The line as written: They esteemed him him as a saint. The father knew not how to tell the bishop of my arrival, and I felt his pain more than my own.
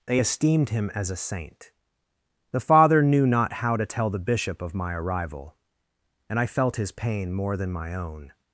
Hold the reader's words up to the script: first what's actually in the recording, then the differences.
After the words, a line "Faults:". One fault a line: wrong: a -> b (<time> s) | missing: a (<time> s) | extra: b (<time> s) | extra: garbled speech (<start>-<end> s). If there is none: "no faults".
They esteemed him as a saint. The father knew not how to tell the bishop of my arrival, and I felt his pain more than my own.
Faults:
missing: him (0.9 s)